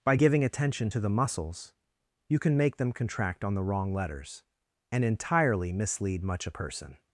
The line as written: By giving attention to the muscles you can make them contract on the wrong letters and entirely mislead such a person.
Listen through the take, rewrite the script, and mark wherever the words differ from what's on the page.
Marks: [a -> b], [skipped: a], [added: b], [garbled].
By giving attention to the muscles you can make them contract on the wrong letters and entirely mislead [such -> much] a person.